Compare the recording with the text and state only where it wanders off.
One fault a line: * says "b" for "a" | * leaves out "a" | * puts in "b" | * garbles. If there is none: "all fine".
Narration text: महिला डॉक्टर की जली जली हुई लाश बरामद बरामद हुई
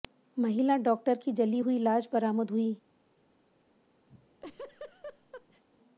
* leaves out "जली"
* leaves out "बरामद"